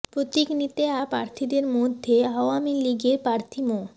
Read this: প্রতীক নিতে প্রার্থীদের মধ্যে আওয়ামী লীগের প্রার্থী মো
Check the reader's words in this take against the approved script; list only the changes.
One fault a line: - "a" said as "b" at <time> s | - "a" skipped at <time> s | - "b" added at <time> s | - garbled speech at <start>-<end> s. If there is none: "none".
none